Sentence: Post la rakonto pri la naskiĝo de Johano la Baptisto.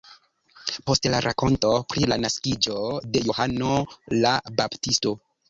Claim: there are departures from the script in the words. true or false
false